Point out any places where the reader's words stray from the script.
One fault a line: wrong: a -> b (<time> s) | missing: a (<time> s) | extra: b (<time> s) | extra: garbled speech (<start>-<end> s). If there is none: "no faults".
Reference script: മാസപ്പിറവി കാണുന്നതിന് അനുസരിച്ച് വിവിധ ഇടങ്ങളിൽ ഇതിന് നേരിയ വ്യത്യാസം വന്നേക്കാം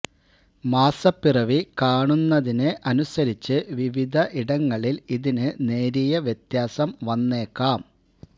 no faults